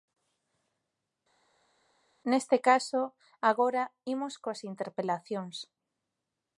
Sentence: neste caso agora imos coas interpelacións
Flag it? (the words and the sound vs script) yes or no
no